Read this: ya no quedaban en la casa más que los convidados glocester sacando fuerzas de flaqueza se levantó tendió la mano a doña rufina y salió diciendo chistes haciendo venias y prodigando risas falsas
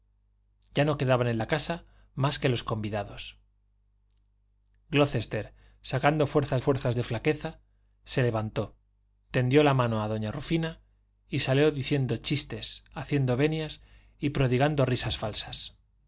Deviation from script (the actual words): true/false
true